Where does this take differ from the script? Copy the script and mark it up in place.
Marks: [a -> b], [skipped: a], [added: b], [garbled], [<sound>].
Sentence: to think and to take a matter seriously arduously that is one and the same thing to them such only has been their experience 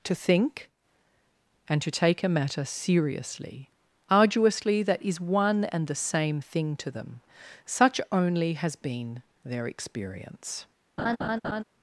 to think and to take a matter seriously arduously that is one and the same thing to them such only has been their experience [laugh]